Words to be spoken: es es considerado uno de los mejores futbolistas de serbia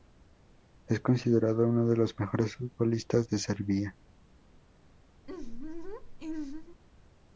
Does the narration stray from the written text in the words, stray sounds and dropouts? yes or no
yes